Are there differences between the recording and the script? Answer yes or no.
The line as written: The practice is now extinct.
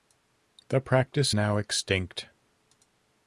yes